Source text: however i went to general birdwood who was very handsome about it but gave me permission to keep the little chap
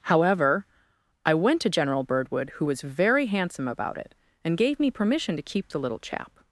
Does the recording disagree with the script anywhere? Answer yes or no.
yes